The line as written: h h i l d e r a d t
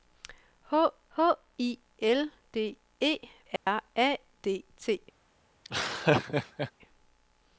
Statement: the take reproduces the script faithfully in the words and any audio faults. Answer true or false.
false